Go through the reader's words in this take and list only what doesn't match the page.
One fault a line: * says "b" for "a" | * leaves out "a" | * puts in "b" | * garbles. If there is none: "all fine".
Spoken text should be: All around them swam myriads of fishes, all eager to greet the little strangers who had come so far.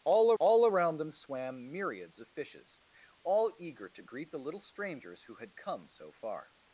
* puts in "all"